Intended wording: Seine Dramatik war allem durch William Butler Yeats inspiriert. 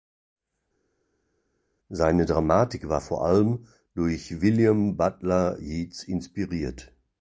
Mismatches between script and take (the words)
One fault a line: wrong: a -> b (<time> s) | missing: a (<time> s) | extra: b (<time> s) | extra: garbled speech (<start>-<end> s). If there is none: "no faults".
extra: vor (3.0 s)